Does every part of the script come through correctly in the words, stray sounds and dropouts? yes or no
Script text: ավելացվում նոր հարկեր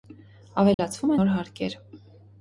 no